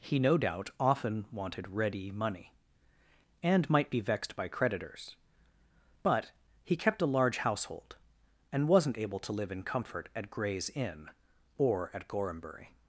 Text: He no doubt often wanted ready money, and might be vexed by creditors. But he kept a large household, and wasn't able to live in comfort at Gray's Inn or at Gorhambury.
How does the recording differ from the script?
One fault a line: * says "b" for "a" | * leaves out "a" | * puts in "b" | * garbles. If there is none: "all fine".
all fine